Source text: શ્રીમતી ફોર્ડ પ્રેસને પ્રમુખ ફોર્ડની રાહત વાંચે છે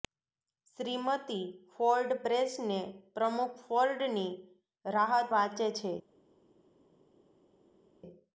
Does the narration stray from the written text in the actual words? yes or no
no